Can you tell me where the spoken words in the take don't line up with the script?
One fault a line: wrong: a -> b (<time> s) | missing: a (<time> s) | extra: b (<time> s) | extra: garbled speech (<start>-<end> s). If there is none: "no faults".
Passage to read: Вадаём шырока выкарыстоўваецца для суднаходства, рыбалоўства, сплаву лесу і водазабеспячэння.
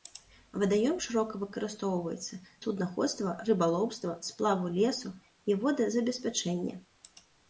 missing: для (2.4 s)